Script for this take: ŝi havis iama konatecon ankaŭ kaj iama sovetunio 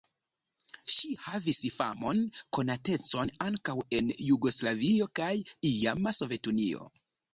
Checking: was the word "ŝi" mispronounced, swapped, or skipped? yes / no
no